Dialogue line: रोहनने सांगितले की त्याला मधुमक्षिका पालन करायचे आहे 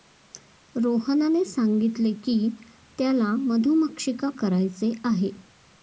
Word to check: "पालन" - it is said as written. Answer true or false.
false